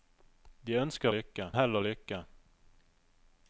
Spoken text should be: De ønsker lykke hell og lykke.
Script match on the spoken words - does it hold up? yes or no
yes